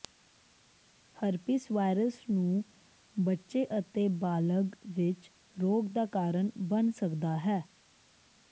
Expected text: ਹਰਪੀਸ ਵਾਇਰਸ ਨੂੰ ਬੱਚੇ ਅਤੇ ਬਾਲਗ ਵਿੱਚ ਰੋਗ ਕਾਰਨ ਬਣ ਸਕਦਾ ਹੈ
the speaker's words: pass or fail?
fail